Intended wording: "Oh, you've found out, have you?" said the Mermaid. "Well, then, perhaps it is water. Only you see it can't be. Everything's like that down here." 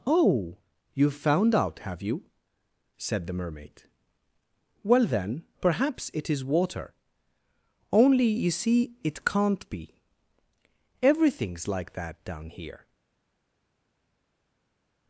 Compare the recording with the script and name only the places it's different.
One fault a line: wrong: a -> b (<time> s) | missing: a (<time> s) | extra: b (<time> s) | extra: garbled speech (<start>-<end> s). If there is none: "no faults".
no faults